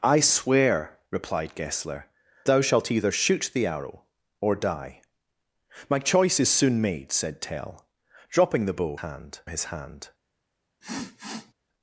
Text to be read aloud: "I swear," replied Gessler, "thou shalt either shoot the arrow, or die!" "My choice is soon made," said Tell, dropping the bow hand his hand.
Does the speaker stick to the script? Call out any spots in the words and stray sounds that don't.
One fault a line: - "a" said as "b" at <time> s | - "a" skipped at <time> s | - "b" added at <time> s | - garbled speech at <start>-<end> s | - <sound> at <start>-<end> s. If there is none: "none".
- sniff at 10.8-11.5 s